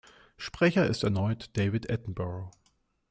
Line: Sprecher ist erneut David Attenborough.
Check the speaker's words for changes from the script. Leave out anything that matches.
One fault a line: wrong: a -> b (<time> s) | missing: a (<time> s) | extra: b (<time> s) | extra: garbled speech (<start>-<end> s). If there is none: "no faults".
no faults